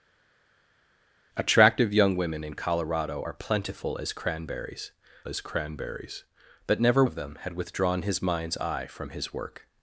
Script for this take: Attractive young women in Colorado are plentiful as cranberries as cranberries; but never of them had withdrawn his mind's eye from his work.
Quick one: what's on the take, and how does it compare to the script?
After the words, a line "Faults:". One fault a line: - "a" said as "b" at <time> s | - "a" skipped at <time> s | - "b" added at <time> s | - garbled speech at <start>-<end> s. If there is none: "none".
Attractive young women in Colorado are plentiful as cranberries as cranberries; but never of them had withdrawn his mind's eye from his work.
Faults:
none